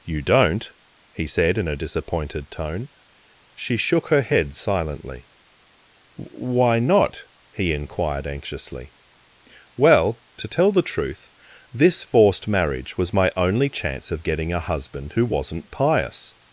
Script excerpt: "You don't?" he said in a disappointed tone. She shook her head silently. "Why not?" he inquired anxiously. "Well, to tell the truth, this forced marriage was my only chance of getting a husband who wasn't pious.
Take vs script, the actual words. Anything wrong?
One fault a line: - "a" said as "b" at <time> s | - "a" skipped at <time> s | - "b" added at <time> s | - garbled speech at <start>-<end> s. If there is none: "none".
none